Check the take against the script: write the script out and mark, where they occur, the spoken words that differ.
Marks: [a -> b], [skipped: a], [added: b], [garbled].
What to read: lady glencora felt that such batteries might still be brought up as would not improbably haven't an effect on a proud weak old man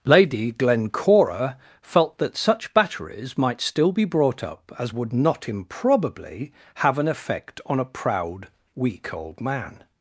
lady glencora felt that such batteries might still be brought up as would not improbably [haven't -> have] an effect on a proud weak old man